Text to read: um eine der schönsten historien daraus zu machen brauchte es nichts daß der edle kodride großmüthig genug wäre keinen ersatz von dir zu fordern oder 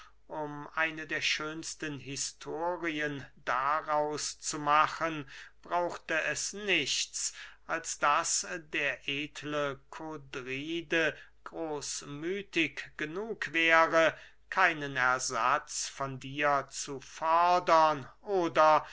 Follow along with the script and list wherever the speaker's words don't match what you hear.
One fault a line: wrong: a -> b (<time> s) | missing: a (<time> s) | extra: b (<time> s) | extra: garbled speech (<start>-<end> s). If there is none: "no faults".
extra: als (7.7 s)